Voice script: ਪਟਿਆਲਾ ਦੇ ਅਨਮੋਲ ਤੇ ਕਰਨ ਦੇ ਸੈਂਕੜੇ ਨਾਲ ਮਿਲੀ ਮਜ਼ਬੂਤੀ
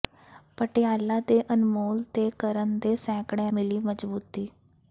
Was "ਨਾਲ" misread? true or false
true